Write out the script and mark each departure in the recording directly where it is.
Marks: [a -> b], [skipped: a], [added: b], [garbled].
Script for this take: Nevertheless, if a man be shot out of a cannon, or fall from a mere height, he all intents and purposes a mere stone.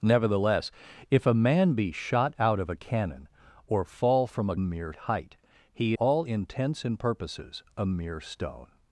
Nevertheless, if a man be shot out of a cannon, or fall from a mere height, he all intents and purposes a mere stone.